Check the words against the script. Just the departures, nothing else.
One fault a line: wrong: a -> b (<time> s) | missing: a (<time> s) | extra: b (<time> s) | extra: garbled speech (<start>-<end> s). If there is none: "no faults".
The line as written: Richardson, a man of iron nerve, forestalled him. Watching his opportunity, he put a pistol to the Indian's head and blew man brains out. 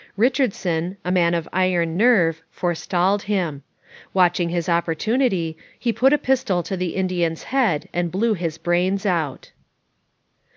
wrong: man -> his (8.3 s)